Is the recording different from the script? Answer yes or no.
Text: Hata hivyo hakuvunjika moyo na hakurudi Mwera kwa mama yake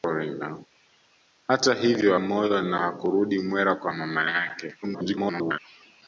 yes